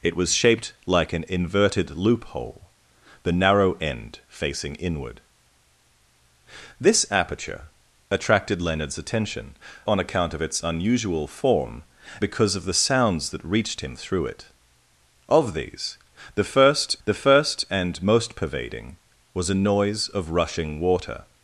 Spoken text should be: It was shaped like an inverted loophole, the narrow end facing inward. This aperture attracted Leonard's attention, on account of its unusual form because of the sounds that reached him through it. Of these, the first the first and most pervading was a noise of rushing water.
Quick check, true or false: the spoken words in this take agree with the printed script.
true